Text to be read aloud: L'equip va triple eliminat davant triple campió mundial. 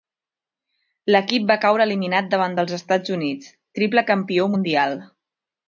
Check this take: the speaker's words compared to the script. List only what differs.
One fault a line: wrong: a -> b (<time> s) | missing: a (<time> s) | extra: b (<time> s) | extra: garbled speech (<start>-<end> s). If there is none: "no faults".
wrong: triple -> caure (1.7 s)
extra: dels Estats Units (2.6 s)